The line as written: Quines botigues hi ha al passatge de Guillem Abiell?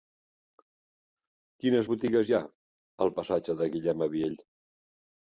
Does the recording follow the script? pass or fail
pass